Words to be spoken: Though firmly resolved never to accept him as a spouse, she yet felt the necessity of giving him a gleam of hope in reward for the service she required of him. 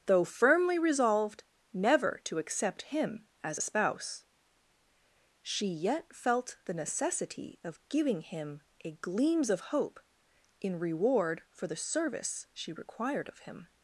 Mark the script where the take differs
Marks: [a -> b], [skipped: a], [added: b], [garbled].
Though firmly resolved never to accept him as a spouse, she yet felt the necessity of giving him a [gleam -> gleams] of hope in reward for the service she required of him.